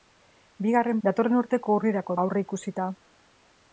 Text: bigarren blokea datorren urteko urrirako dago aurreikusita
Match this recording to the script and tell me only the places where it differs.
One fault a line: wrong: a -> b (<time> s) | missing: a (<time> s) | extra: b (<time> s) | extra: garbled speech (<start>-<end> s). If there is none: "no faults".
missing: blokea (1.0 s)
missing: dago (2.2 s)